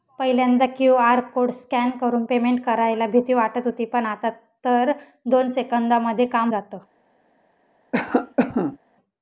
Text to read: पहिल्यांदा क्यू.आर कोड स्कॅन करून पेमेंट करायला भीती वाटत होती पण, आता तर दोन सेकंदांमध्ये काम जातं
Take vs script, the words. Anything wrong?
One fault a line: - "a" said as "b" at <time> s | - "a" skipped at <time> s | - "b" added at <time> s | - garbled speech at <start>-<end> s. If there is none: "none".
none